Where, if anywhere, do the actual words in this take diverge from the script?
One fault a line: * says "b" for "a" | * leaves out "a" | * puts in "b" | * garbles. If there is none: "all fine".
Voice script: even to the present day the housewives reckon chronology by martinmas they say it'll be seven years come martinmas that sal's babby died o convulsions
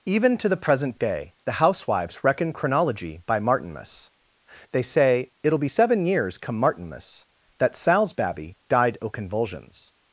all fine